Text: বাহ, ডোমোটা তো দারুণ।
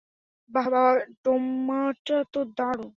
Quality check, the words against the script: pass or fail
fail